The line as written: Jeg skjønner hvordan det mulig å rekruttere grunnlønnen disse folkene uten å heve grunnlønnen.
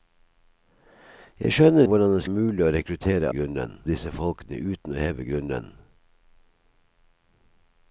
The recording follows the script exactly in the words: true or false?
true